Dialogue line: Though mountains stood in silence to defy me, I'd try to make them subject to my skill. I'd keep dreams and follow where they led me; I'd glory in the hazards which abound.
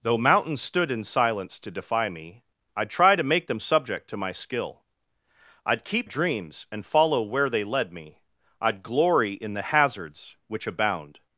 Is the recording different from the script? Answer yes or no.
no